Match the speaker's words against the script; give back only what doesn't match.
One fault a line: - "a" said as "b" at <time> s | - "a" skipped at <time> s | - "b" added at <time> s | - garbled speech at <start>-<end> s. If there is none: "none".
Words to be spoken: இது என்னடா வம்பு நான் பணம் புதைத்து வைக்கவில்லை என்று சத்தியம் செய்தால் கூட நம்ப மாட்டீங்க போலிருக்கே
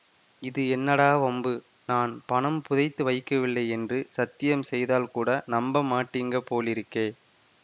none